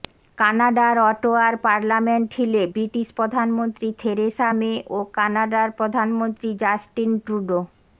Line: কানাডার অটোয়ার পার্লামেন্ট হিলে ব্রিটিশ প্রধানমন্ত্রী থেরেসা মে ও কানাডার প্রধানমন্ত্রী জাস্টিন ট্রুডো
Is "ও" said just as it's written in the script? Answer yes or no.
yes